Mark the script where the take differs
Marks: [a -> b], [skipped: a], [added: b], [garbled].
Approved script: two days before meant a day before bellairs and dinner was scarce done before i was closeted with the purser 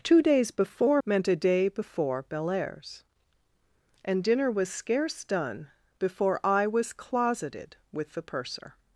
two days before meant a day before bellairs and dinner was scarce done before i was closeted with the purser